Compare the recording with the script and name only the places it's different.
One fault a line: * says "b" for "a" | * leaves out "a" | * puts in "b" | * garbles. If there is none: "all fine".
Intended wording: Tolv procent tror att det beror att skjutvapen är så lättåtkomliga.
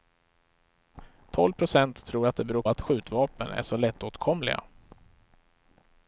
all fine